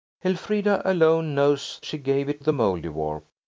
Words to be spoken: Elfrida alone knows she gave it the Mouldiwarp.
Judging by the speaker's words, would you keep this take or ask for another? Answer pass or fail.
pass